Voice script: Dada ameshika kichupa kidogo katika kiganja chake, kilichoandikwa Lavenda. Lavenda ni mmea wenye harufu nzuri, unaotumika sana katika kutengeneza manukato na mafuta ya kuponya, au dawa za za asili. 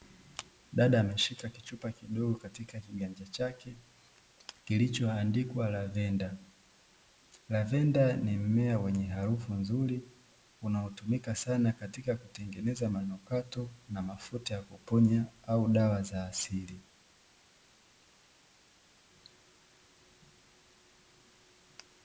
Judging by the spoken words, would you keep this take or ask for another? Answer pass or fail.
fail